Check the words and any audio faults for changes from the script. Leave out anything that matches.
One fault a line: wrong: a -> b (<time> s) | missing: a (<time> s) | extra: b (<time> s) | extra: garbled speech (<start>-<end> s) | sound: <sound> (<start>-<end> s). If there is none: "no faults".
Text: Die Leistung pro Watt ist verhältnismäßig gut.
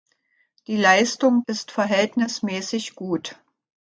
missing: pro Watt (1.4 s)